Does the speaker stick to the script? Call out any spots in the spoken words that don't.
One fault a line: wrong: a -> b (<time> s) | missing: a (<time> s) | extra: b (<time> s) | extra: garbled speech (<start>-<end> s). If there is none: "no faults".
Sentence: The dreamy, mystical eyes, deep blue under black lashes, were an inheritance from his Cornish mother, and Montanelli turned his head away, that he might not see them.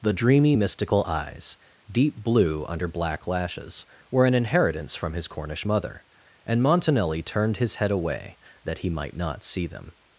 no faults